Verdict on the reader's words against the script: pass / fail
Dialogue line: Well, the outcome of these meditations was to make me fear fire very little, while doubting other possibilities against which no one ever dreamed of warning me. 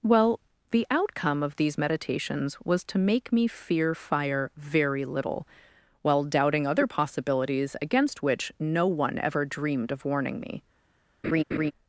pass